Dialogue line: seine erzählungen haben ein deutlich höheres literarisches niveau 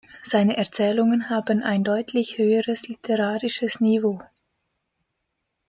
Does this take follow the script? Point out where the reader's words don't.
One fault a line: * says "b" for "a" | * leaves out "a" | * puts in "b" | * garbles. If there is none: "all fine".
all fine